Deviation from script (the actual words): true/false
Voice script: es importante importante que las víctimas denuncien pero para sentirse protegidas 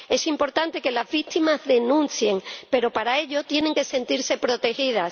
true